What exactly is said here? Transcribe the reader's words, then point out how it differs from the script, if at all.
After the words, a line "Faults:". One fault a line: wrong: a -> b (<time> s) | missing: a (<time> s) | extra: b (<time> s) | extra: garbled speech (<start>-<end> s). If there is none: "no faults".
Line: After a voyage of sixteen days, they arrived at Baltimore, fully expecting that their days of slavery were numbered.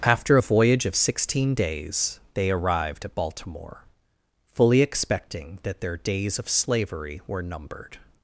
After a voyage of sixteen days, they arrived at Baltimore, fully expecting that their days of slavery were numbered.
Faults:
no faults